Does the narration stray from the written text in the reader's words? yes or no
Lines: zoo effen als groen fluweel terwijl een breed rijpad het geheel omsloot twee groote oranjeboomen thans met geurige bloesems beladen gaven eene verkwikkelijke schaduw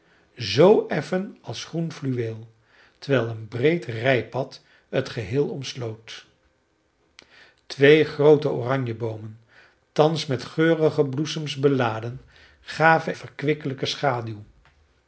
yes